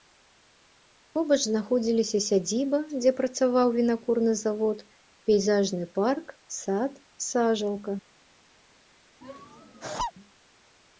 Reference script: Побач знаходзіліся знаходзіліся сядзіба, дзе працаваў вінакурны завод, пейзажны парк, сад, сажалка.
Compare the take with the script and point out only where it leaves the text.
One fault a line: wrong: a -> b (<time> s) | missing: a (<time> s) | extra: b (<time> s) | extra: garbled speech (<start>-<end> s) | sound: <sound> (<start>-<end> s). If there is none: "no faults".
missing: знаходзіліся (2.2 s)
sound: laugh (9.2-10.1 s)